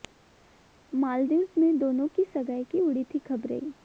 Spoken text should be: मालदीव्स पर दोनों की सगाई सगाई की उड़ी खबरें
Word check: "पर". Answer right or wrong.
wrong